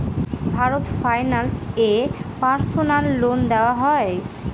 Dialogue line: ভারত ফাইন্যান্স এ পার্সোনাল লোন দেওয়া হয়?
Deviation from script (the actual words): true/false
false